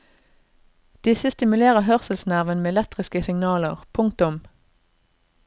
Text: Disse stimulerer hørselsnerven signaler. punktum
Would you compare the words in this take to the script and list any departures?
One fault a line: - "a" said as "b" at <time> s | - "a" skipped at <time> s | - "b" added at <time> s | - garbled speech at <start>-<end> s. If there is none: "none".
- "med elektriske" added at 2.6 s